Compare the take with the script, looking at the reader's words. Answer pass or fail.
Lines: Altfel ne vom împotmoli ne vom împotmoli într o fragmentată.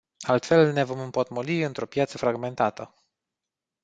fail